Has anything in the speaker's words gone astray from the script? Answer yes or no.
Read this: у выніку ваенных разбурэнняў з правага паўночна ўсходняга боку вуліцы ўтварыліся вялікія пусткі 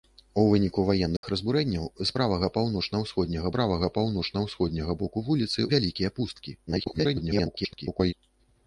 yes